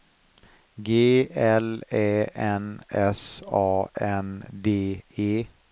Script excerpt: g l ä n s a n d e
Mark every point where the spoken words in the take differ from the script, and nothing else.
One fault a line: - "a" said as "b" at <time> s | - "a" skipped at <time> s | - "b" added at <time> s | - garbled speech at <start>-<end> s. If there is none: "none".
none